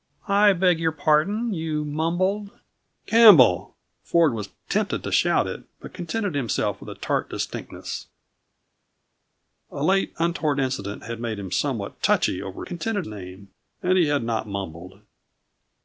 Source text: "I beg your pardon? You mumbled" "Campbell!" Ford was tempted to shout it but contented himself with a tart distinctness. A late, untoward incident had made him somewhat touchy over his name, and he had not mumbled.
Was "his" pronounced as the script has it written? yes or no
no